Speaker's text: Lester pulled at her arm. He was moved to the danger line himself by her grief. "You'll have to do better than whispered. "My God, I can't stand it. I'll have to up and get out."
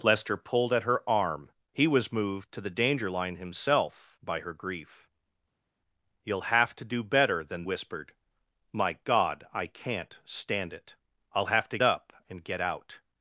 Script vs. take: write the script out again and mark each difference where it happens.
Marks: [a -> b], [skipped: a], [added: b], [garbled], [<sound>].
Lester pulled at her arm. He was moved to the danger line himself by her grief. "You'll have to do better than whispered. "My God, I can't stand it. I'll have to up and get out."